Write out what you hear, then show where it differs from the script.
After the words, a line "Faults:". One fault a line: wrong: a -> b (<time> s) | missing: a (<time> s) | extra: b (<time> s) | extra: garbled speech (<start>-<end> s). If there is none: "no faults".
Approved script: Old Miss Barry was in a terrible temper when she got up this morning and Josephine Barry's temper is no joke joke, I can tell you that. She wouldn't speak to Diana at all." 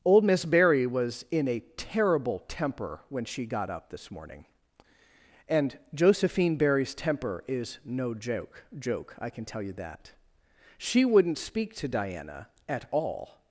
Old Miss Barry was in a terrible temper when she got up this morning and Josephine Barry's temper is no joke joke, I can tell you that. She wouldn't speak to Diana at all."
Faults:
no faults